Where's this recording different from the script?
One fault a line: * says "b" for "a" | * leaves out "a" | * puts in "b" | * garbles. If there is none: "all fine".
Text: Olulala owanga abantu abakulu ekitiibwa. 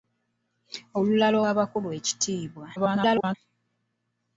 * leaves out "owanga abantu"
* garbles